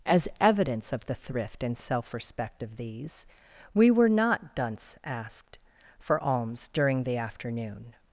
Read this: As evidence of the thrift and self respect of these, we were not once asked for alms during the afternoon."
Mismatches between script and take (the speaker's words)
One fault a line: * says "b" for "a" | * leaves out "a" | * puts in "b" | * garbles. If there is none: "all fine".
* says "dunce" for "once"